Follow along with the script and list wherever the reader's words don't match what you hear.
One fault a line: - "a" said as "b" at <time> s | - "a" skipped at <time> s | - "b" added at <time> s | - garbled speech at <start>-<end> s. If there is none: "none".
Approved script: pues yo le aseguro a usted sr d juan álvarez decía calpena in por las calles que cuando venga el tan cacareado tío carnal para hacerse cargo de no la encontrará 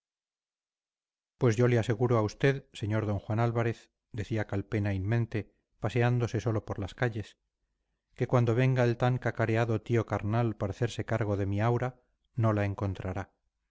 - "mente paseándose solo" added at 5.0 s
- "mi aura" added at 11.5 s